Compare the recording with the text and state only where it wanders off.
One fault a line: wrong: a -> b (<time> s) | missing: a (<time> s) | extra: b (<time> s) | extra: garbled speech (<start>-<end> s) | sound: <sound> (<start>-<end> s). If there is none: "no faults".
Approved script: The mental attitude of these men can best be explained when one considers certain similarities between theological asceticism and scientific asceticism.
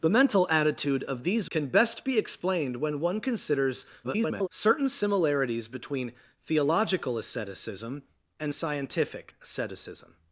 missing: men (1.5 s)
extra: garbled speech (4.0-4.5 s)